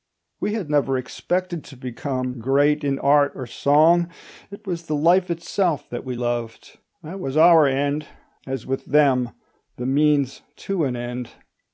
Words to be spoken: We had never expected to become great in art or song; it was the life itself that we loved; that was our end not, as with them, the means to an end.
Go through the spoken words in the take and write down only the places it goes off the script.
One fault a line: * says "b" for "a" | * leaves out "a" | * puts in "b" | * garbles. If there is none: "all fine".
* leaves out "not"